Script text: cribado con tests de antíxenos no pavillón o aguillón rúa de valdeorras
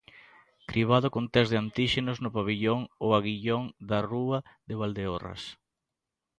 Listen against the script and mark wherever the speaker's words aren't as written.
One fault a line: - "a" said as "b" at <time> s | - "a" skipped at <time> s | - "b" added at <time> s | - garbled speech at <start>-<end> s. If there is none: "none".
- "da" added at 3.9 s